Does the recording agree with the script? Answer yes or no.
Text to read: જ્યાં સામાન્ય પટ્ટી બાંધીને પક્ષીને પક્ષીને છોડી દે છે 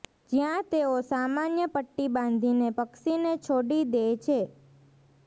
no